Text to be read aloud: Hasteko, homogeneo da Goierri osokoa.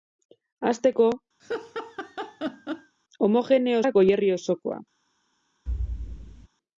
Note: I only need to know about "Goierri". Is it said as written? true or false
true